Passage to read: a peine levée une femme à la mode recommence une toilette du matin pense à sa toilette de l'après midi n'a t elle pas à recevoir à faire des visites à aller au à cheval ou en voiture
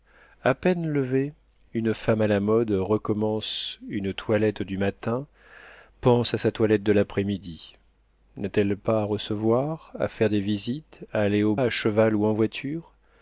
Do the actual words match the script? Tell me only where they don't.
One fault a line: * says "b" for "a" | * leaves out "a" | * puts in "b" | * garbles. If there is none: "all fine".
all fine